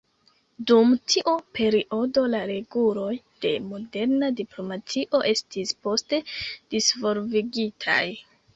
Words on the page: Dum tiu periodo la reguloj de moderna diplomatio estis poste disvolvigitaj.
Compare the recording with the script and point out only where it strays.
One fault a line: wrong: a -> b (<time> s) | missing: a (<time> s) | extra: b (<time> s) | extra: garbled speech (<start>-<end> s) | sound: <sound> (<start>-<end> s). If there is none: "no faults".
no faults